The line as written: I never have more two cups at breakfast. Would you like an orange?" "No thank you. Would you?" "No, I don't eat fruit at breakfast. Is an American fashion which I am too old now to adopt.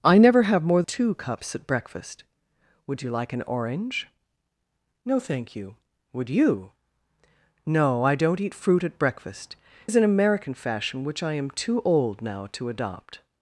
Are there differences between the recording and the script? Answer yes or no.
no